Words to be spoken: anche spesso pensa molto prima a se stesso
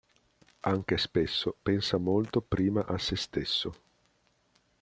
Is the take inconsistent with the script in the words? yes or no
no